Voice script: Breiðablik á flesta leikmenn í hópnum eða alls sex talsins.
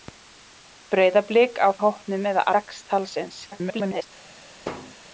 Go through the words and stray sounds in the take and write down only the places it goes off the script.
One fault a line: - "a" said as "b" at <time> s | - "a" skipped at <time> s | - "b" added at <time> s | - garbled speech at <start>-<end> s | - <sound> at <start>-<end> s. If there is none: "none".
- "flesta leikmenn" skipped at 1.7 s
- "alls" skipped at 2.4 s
- garbled speech at 3.5-4.1 s
- thud at 4.6-5.0 s